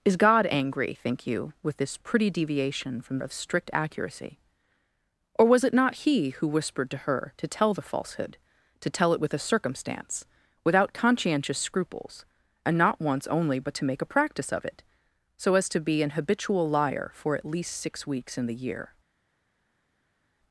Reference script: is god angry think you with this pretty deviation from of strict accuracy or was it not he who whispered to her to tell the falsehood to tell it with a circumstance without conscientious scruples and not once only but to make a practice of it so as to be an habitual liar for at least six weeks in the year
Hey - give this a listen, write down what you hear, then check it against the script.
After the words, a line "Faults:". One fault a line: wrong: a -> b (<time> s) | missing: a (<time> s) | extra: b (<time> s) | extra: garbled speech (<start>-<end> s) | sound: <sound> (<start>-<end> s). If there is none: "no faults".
is god angry think you with this pretty deviation from of strict accuracy or was it not he who whispered to her to tell the falsehood to tell it with a circumstance without conscientious scruples and not once only but to make a practice of it so as to be an habitual liar for at least six weeks in the year
Faults:
no faults